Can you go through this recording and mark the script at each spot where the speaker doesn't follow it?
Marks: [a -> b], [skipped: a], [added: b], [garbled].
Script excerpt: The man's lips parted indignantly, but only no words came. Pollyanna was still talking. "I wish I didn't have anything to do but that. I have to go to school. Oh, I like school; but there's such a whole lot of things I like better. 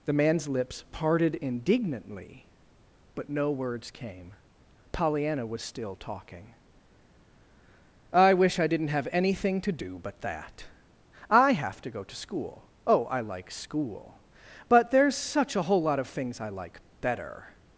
The man's lips parted indignantly, but [skipped: only] no words came. Pollyanna was still talking. "I wish I didn't have anything to do but that. I have to go to school. Oh, I like school; but there's such a whole lot of things I like better.